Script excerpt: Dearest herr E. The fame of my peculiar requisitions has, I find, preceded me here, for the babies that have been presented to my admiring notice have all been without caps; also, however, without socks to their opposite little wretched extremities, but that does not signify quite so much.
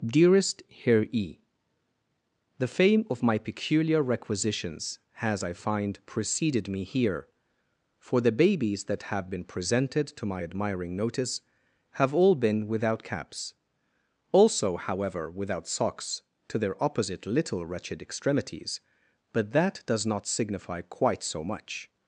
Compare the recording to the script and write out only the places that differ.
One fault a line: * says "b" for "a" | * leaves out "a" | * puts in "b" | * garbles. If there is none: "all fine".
all fine